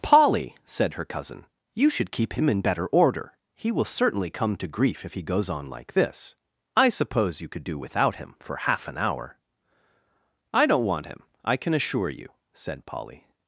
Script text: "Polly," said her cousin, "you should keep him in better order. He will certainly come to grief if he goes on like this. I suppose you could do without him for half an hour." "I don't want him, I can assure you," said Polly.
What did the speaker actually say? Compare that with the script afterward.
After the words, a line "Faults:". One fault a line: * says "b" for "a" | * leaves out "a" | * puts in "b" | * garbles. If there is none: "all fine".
"Polly," said her cousin, "you should keep him in better order. He will certainly come to grief if he goes on like this. I suppose you could do without him for half an hour." "I don't want him, I can assure you," said Polly.
Faults:
all fine